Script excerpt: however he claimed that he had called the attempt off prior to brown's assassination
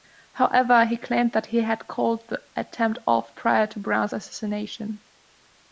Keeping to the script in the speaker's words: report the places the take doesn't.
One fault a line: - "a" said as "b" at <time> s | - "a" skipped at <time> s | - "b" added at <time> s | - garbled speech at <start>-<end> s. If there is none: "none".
none